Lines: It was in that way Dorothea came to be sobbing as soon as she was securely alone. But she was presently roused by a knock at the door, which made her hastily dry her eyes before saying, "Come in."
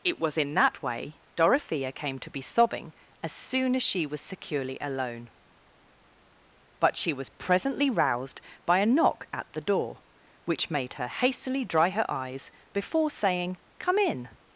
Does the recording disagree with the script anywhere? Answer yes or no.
no